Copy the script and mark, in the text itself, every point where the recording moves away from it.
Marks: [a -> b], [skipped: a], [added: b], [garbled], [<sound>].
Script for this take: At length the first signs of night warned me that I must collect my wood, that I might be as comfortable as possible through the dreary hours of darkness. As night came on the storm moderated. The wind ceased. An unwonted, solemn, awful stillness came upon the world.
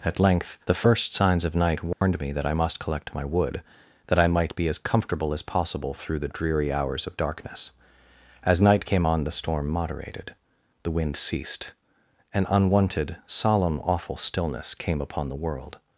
At length the first signs of night warned [dropout] me that I must collect my wood, that I might be as comfortable as possible through the dreary hours of darkness. As night came on the storm moderated. The wind ceased. An unwonted, solemn, awful stillness came upon the world.